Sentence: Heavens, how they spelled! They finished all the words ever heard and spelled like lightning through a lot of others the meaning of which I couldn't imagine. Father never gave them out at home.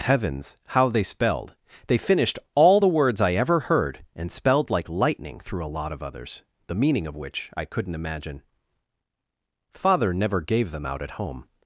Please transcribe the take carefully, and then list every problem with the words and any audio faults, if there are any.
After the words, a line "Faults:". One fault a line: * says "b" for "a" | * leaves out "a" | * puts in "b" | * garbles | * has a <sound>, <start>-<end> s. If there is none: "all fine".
Heavens, how they spelled! They finished all the words I ever heard and spelled like lightning through a lot of others the meaning of which I couldn't imagine. Father never gave them out at home.
Faults:
* puts in "I"